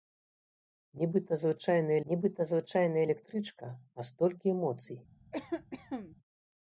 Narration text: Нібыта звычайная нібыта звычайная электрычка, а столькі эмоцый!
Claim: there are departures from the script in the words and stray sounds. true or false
true